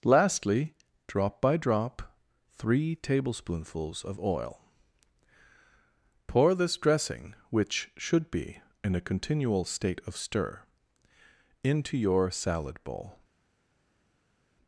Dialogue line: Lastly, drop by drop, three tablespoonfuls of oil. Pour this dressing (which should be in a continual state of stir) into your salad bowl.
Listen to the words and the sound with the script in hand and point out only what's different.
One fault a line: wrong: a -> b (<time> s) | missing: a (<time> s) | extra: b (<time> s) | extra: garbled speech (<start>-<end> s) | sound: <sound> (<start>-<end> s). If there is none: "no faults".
no faults